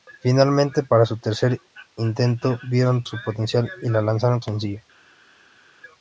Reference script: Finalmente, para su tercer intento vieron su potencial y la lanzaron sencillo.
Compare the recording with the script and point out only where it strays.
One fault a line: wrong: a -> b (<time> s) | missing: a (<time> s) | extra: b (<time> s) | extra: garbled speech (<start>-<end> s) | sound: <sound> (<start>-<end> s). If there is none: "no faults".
no faults